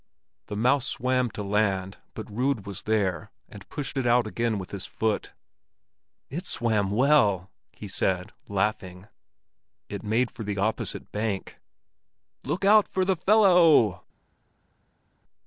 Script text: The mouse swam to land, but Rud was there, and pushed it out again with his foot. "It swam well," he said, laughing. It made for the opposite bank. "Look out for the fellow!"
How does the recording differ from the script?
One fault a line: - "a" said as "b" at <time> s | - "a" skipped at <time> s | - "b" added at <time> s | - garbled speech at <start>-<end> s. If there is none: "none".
none